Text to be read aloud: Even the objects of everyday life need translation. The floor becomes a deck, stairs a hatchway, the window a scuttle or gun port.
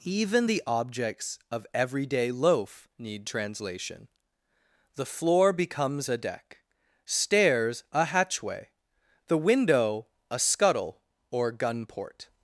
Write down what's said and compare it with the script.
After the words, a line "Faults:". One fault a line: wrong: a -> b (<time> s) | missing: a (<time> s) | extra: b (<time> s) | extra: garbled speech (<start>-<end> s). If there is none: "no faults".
Even the objects of everyday loaf need translation. The floor becomes a deck, stairs a hatchway, the window a scuttle or gun port.
Faults:
wrong: life -> loaf (2.3 s)